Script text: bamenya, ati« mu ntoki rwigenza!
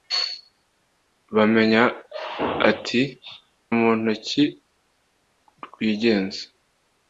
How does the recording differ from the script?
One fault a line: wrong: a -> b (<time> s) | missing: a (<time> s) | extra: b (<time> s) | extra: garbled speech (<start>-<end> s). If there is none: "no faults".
no faults